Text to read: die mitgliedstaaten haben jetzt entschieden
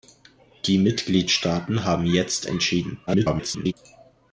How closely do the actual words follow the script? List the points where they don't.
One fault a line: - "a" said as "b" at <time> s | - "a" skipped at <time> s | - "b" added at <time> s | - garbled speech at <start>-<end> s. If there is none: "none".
- garbled speech at 3.1-3.7 s